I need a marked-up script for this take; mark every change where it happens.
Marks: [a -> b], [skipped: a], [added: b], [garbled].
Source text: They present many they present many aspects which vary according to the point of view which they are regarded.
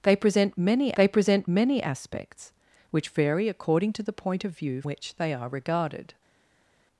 They present many they present many aspects which vary according to the point of view which they are regarded.